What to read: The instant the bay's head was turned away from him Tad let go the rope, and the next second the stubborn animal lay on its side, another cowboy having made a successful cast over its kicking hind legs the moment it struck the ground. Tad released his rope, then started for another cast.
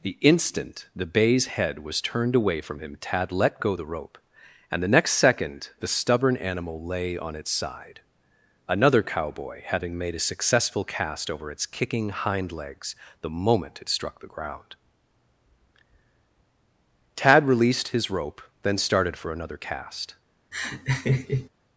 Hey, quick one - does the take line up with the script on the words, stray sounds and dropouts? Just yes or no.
no